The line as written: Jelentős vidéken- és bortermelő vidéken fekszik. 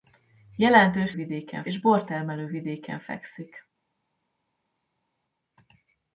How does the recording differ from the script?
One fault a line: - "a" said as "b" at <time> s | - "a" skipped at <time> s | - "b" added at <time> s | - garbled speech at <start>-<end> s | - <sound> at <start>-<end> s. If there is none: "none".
none